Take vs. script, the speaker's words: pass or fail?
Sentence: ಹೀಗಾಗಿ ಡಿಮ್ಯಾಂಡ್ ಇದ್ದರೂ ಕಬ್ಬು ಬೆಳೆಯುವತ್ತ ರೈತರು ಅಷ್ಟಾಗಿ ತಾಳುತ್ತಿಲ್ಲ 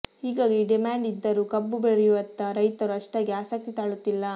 fail